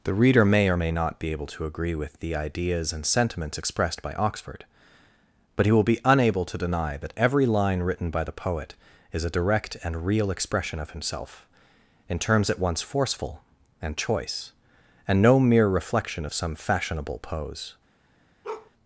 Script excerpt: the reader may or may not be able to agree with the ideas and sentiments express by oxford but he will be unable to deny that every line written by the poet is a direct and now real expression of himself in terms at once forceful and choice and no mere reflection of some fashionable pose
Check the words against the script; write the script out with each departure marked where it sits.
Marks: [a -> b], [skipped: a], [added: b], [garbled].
the reader may or may not be able to agree with the ideas and sentiments [express -> expressed] by oxford but he will be unable to deny that every line written by the poet is a direct and [skipped: now] real expression of himself in terms at once forceful and choice and no mere reflection of some fashionable pose